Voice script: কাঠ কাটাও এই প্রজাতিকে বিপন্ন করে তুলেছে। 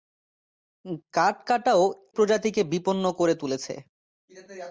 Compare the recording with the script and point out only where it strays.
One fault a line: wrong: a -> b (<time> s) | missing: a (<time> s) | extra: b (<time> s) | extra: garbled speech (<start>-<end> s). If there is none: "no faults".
missing: এই (1.8 s)